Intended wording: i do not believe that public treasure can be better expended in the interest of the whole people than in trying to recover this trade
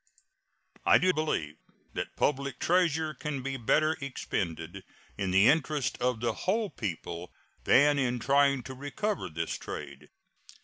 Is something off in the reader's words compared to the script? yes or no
yes